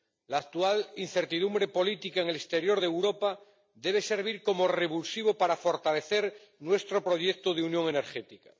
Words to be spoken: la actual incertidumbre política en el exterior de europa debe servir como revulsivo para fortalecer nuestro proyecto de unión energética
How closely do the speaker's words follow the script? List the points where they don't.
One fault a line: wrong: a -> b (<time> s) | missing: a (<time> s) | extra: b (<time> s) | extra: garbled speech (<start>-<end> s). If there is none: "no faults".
no faults